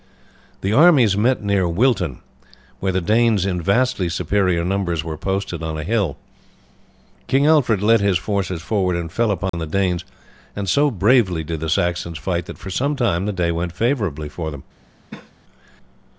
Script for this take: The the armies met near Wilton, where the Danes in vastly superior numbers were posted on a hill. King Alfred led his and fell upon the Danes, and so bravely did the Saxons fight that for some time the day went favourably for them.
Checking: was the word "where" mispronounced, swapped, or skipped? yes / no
no